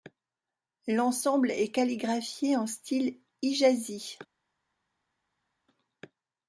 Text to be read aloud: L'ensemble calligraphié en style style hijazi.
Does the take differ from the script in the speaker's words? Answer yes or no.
yes